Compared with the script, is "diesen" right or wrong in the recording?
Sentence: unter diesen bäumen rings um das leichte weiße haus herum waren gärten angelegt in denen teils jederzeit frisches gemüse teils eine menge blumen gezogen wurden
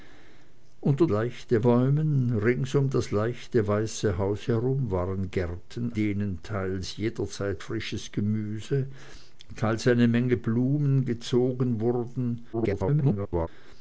wrong